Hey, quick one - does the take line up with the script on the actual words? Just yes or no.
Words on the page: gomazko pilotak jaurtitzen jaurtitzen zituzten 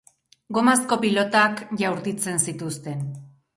no